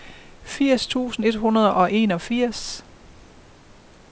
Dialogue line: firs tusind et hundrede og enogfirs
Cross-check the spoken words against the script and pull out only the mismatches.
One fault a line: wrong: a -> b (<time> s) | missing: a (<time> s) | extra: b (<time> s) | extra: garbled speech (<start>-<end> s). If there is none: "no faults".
no faults